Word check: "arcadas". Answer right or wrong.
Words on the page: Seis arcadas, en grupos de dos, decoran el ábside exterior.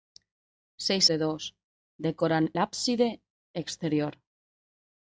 wrong